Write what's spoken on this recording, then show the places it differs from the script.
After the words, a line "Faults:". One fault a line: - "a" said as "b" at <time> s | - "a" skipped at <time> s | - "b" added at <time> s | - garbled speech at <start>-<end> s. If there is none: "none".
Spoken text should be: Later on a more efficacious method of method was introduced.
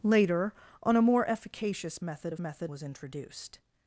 Later on a more efficacious method of method was introduced.
Faults:
none